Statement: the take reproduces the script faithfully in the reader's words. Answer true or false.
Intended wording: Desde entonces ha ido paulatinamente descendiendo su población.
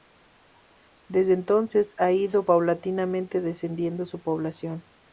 true